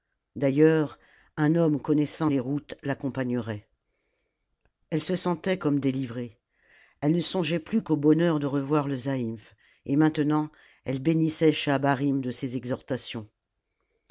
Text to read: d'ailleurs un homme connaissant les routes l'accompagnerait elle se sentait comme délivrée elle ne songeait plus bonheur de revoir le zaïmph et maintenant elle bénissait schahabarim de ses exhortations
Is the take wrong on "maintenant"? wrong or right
right